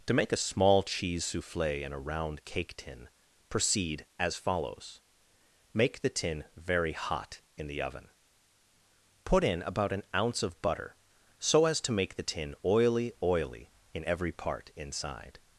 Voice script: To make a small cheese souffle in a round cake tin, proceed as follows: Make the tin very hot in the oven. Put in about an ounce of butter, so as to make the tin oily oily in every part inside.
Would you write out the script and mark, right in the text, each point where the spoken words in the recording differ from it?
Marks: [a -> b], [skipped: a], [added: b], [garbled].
To make a small cheese souffle in a round cake tin, proceed as follows: Make the tin very hot in the oven. Put in about an ounce of butter, so as to make the tin oily oily in every part inside.